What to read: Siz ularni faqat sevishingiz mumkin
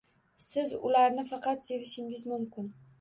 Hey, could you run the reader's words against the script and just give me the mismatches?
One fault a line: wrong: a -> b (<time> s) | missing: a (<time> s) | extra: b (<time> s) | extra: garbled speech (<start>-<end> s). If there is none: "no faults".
no faults